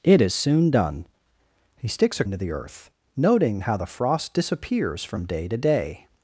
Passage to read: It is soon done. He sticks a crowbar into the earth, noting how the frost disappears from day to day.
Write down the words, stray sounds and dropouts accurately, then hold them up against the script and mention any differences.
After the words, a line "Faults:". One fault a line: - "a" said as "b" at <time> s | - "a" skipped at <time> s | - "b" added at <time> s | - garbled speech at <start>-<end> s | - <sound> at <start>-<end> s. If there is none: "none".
It is soon done. He sticks a into the earth, noting how the frost disappears from day to day.
Faults:
- "crowbar" skipped at 2.2 s